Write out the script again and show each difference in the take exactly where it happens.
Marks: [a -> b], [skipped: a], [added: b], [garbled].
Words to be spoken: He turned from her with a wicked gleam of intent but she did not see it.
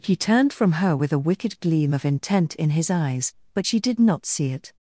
He turned from her with a wicked gleam of intent [added: in his eyes] but she did not see it.